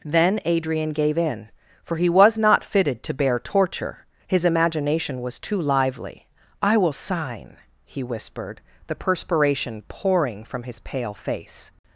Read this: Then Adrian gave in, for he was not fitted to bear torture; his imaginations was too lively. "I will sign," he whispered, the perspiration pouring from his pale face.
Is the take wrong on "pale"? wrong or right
right